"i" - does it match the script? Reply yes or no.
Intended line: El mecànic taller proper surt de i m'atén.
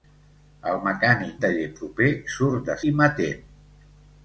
yes